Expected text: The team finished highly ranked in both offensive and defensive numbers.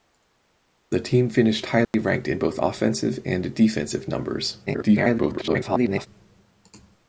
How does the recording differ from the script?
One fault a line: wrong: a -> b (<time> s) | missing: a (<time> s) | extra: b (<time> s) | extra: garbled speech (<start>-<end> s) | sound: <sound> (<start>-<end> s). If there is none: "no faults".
sound: dropout (1.8-1.9 s)
extra: garbled speech (4.7-6.1 s)